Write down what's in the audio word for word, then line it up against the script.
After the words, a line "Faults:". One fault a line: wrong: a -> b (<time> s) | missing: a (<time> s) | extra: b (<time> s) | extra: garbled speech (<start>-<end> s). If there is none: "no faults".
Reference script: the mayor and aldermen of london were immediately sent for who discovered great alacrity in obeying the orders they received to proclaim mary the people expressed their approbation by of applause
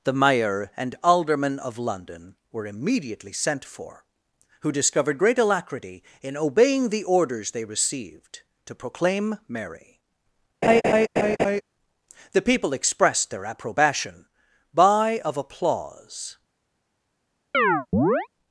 the mayor and aldermen of london were immediately sent for who discovered great alacrity in obeying the orders they received to proclaim mary the people expressed their approbation by of applause
Faults:
no faults